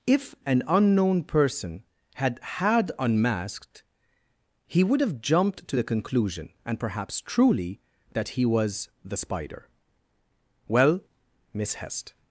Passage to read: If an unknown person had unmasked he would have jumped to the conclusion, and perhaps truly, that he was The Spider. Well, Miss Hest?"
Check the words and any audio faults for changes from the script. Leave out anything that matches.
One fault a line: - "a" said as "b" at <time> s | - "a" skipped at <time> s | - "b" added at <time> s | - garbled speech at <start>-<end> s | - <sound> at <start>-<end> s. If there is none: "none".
- "had" added at 2.4 s